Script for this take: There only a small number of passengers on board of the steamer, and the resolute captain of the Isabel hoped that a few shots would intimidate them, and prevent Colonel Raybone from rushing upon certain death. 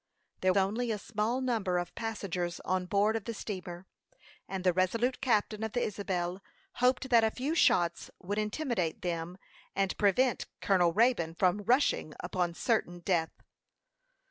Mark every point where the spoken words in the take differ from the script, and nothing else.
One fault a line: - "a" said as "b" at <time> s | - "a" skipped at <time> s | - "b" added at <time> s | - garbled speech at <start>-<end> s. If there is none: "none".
none